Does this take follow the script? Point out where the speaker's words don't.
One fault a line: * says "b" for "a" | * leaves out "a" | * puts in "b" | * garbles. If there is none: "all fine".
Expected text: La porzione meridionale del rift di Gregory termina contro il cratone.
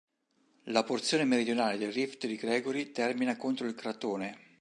all fine